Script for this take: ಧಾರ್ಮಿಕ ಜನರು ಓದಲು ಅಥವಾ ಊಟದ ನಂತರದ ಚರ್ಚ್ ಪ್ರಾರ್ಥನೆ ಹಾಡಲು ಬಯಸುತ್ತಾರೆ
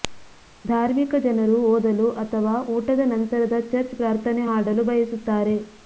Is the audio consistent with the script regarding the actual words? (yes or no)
yes